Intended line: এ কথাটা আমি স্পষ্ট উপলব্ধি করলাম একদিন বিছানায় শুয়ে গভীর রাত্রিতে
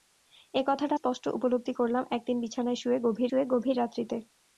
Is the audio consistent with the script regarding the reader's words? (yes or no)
no